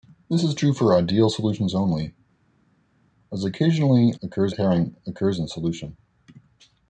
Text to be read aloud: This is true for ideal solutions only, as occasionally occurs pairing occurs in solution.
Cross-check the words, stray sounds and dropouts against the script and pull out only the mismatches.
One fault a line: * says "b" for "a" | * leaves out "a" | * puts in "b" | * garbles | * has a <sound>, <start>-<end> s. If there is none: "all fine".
all fine